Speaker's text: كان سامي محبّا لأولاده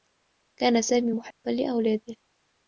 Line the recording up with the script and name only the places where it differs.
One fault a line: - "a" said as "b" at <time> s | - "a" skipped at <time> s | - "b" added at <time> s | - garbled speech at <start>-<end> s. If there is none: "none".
none